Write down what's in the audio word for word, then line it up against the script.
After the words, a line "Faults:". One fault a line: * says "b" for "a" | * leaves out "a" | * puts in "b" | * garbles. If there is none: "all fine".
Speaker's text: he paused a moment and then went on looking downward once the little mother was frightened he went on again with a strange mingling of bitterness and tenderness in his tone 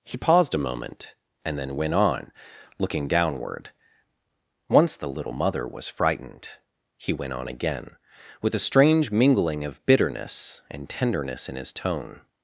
he paused a moment and then went on looking downward once the little mother was frightened he went on again with a strange mingling of bitterness and tenderness in his tone
Faults:
all fine